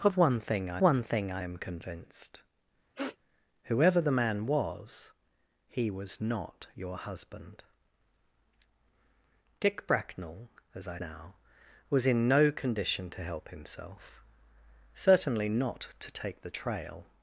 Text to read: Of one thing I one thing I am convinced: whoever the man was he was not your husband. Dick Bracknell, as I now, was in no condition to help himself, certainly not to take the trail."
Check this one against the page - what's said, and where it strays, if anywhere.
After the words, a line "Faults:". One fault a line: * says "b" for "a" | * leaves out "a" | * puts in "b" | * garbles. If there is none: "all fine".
Of one thing I one thing I am convinced: whoever the man was he was not your husband. Dick Bracknell, as I now, was in no condition to help himself, certainly not to take the trail."
Faults:
all fine